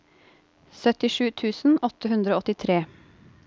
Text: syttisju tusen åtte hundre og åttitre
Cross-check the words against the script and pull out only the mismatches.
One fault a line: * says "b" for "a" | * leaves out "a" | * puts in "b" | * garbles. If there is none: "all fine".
all fine